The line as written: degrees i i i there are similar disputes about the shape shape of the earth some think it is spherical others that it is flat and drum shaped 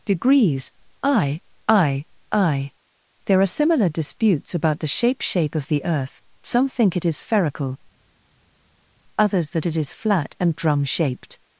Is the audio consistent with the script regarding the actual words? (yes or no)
yes